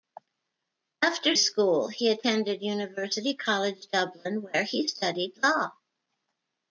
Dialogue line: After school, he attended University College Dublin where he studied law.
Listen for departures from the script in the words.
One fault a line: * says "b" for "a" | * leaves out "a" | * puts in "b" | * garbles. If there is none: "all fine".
all fine